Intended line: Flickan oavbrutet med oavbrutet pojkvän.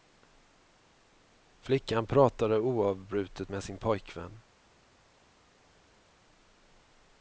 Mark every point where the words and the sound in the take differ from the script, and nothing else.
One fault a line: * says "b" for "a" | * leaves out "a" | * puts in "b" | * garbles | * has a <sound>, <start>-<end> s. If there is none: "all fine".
* puts in "pratade"
* says "sin" for "oavbrutet"